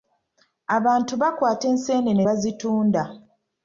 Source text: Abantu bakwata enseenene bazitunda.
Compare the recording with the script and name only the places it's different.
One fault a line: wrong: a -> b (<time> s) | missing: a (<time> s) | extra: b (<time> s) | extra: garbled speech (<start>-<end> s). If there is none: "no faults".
no faults